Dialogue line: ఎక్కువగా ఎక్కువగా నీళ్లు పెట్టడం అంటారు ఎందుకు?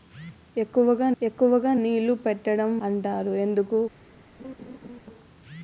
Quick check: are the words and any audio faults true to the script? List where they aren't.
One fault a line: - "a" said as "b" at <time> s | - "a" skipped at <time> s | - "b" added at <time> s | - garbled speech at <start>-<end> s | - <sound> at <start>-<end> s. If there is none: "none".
- laugh at 4.4-5.0 s